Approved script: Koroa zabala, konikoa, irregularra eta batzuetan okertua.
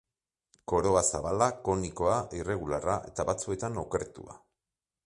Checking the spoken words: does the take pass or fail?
pass